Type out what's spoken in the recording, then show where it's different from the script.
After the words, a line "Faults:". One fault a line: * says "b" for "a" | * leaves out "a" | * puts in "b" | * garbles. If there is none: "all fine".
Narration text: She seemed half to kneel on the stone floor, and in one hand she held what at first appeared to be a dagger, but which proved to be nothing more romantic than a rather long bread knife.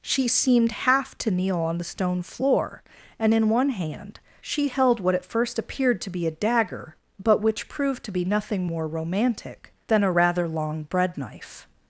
She seemed half to kneel on the stone floor, and in one hand she held what at first appeared to be a dagger, but which proved to be nothing more romantic than a rather long bread knife.
Faults:
all fine